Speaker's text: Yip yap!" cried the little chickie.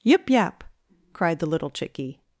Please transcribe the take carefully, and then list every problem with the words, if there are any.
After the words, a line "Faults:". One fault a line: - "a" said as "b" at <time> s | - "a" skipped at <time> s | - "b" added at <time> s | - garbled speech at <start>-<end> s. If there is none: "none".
Yip yap!" cried the little chickie.
Faults:
none